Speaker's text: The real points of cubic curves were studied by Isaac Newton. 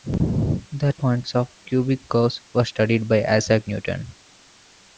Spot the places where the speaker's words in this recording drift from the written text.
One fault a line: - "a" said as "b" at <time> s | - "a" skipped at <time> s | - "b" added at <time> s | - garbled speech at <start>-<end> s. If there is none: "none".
- "real" skipped at 0.9 s